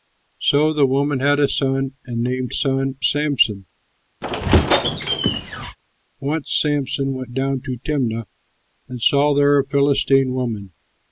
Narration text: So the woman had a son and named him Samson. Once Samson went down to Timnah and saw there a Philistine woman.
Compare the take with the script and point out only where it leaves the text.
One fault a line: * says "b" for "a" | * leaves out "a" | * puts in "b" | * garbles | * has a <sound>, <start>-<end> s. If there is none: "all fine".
* says "son" for "him"
* has a squeak, 4.2-5.8 s